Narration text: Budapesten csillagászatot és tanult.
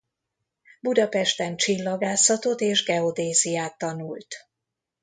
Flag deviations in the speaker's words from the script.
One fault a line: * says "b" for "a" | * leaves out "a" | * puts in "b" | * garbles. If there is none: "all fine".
* puts in "geodéziát"